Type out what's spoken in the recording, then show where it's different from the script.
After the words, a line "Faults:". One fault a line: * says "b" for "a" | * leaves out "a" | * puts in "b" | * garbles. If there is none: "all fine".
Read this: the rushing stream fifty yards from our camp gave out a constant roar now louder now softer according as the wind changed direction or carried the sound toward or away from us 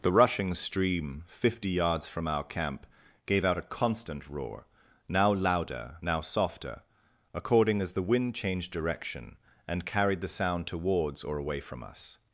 the rushing stream fifty yards from our camp gave out a constant roar now louder now softer according as the wind changed direction and carried the sound towards or away from us
Faults:
* says "and" for "or"
* says "towards" for "toward"